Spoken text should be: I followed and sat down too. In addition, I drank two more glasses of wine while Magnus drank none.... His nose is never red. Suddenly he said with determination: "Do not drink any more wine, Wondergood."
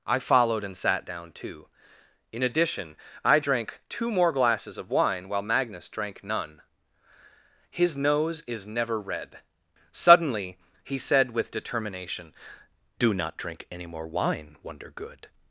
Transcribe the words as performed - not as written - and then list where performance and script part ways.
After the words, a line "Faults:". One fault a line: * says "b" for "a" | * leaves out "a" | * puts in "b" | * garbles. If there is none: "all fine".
I followed and sat down too. In addition, I drank two more glasses of wine while Magnus drank none.... His nose is never red. Suddenly he said with determination: "Do not drink any more wine, Wondergood."
Faults:
all fine